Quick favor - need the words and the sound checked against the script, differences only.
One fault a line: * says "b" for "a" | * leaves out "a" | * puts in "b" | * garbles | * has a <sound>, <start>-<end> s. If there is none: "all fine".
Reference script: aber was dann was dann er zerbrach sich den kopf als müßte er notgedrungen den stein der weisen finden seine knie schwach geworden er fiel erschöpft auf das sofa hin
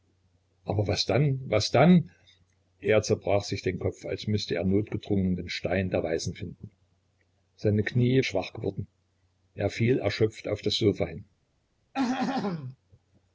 * has a throat clearing, 11.9-12.8 s